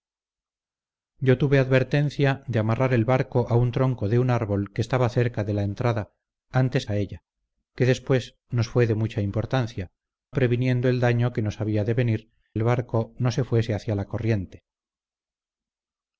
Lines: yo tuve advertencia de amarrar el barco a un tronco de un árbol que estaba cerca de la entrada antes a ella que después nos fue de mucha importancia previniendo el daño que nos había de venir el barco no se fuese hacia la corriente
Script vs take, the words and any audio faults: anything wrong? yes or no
no